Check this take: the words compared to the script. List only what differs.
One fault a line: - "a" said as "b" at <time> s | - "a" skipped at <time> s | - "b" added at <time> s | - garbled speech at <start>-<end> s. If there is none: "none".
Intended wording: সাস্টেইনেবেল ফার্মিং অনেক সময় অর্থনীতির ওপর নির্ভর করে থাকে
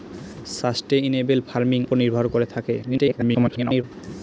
- "অনেক সময় অর্থনীতির" skipped at 1.8 s
- garbled speech at 2.8-3.8 s